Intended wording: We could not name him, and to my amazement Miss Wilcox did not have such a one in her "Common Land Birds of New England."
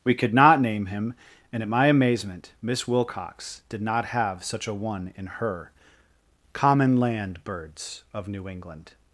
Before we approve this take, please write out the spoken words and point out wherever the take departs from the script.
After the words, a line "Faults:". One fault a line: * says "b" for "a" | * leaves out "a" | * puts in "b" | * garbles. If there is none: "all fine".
We could not name him, and at my amazement Miss Wilcox did not have such a one in her "Common Land Birds of New England."
Faults:
* says "at" for "to"